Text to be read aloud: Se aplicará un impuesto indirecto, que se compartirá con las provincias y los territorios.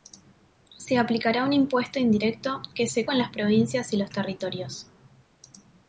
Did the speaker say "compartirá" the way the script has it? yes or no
no